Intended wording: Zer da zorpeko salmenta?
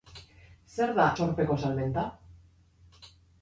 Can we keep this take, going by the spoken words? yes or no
yes